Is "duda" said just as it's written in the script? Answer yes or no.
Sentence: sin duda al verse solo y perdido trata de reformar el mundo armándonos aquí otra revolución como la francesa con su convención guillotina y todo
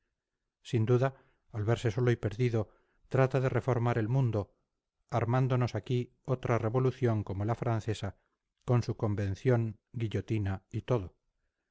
yes